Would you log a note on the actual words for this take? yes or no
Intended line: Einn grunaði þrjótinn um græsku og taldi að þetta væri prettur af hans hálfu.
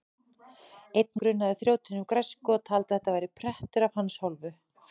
no